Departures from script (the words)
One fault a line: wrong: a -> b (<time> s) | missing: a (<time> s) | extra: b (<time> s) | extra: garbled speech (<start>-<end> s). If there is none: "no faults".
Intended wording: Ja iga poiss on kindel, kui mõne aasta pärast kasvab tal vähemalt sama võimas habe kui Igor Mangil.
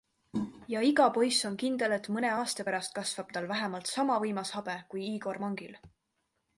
wrong: kui -> et (2.0 s)